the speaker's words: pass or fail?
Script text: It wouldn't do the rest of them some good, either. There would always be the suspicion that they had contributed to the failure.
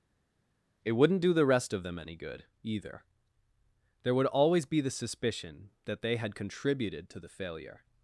fail